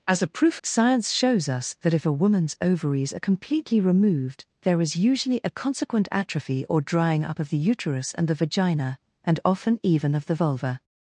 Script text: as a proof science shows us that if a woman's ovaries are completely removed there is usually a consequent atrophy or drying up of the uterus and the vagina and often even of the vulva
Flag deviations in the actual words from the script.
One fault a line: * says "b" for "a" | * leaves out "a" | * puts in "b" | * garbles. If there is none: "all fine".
all fine